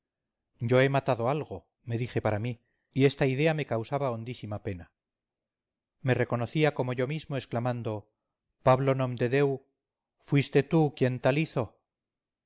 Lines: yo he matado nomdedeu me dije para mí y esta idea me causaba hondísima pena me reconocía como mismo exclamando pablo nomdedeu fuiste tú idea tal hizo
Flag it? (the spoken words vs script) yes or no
yes